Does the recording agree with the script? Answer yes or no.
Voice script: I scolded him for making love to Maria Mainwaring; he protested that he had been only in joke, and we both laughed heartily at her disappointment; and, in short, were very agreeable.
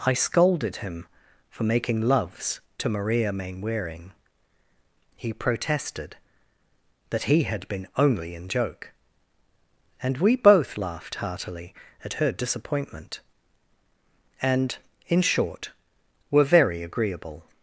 no